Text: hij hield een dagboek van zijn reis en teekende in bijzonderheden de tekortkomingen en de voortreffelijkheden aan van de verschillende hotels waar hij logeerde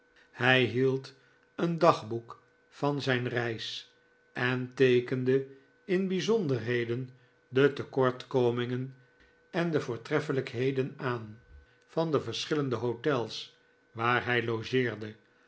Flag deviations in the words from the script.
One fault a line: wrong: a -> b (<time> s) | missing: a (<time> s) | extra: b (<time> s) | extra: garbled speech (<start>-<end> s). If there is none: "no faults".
no faults